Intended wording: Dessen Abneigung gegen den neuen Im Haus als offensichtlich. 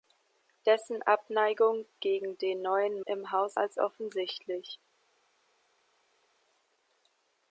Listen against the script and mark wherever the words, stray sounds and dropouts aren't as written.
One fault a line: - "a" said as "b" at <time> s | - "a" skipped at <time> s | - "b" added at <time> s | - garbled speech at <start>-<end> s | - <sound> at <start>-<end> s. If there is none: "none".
none